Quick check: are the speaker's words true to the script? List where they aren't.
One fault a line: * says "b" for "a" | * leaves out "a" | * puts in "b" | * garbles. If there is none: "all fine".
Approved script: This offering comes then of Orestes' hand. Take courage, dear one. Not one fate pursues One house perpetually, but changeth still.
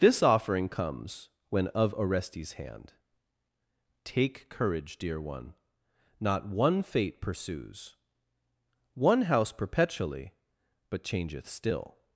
* says "when" for "then"